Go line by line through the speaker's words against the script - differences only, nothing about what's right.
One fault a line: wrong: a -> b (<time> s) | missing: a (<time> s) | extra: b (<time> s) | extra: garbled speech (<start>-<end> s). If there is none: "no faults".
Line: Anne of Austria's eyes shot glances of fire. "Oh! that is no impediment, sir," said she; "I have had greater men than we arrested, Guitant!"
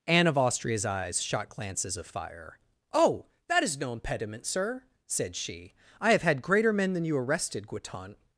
wrong: we -> you (7.0 s)